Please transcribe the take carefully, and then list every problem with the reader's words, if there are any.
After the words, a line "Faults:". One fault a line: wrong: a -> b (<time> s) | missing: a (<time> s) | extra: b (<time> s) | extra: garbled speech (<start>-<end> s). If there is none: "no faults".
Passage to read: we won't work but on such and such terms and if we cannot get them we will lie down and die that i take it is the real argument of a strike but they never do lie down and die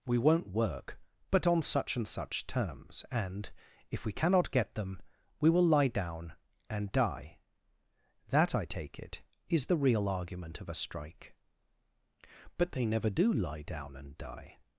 we won't work but on such and such terms and if we cannot get them we will lie down and die that i take it is the real argument of a strike but they never do lie down and die
Faults:
no faults